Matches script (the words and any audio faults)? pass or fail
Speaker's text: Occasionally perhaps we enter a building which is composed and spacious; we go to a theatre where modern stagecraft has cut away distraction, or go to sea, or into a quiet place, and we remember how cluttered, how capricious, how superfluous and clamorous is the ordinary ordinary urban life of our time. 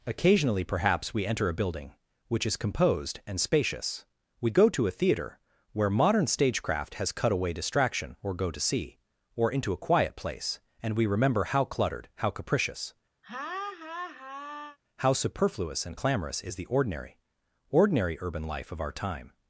fail